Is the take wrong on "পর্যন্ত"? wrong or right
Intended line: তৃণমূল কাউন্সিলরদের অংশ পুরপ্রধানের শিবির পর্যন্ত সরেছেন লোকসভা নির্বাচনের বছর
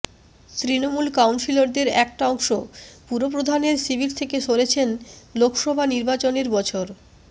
wrong